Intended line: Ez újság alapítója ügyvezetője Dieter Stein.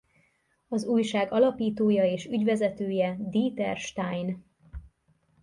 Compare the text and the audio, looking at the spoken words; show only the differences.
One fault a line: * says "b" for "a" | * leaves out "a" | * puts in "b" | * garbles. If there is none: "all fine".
* says "Az" for "Ez"
* puts in "és"